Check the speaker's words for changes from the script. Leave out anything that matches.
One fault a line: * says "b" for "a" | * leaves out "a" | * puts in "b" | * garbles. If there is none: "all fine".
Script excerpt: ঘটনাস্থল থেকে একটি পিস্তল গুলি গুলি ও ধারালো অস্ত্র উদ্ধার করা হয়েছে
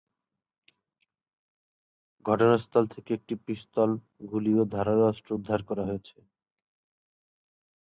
* leaves out "গুলি"